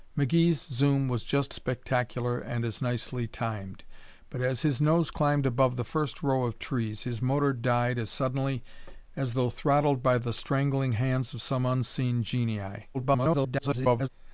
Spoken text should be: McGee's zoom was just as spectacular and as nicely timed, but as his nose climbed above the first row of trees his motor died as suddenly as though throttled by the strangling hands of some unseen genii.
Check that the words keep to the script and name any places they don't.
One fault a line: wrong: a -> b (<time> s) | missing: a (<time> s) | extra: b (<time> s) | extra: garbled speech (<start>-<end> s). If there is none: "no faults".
missing: as (1.5 s)
extra: garbled speech (12.9-14.1 s)